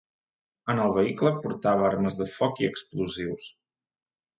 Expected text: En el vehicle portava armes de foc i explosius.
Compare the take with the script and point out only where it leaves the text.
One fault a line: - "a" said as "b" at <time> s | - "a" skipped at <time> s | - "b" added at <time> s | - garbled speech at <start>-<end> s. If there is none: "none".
none